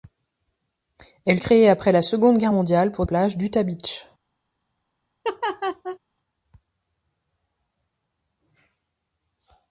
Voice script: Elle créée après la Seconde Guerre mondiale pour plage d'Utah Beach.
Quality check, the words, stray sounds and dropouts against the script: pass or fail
fail